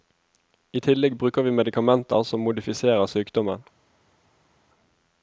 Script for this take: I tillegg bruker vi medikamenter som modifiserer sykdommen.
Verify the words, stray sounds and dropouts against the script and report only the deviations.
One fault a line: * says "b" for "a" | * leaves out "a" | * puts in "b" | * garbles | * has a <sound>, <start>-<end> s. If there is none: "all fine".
all fine